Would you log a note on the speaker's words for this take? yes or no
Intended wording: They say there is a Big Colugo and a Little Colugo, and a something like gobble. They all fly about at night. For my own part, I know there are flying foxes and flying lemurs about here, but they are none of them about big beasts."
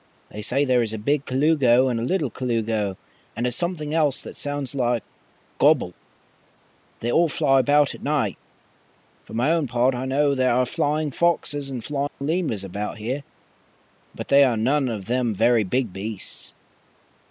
yes